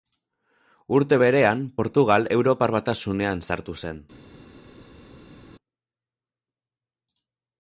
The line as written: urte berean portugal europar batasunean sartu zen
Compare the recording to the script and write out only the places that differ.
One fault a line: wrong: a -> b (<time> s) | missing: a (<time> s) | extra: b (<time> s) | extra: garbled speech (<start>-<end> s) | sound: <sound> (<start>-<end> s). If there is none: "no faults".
no faults